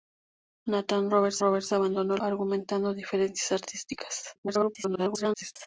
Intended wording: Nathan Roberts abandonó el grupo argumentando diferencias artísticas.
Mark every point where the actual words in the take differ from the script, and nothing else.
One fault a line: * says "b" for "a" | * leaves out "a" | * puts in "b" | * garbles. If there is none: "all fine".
* puts in "Roberts"
* leaves out "grupo"
* garbles